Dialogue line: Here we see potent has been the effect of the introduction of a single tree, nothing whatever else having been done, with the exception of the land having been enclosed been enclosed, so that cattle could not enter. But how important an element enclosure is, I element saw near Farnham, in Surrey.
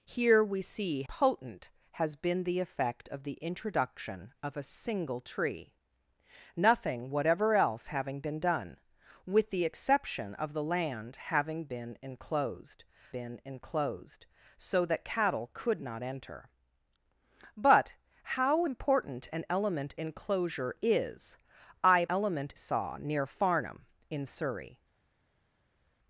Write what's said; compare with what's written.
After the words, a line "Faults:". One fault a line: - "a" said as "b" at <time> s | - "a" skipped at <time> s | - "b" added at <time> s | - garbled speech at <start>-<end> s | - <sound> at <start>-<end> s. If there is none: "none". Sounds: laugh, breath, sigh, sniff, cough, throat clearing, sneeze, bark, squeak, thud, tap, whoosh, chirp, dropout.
Here we see potent has been the effect of the introduction of a single tree, nothing whatever else having been done, with the exception of the land having been enclosed been enclosed, so that cattle could not enter. But how important an element enclosure is, I element saw near Farnham, in Surrey.
Faults:
none